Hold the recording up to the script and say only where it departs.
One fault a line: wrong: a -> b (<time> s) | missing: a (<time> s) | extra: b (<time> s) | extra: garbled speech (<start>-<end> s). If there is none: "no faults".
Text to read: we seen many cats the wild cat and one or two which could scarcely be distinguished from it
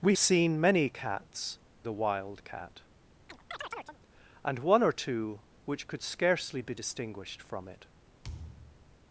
no faults